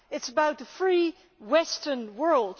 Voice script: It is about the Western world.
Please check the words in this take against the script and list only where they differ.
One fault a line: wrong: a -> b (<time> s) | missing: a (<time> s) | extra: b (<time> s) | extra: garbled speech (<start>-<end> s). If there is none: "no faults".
extra: free (0.7 s)